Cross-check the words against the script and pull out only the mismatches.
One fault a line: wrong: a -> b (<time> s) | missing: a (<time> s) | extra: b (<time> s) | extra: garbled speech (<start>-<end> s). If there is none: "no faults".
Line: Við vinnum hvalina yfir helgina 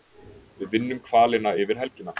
no faults